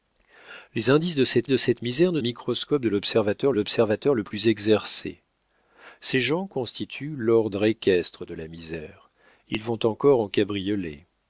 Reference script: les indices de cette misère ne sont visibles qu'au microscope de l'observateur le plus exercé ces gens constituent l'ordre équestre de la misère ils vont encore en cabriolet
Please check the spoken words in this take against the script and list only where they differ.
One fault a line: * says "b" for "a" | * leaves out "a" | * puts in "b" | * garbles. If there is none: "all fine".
* puts in "de cette"
* leaves out "sont visibles qu'au"
* puts in "l'observateur"